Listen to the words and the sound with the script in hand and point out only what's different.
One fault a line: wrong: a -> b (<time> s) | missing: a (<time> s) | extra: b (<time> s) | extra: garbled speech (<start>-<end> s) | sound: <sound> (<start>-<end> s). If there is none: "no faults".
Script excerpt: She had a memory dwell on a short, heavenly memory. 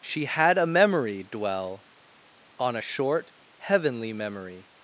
no faults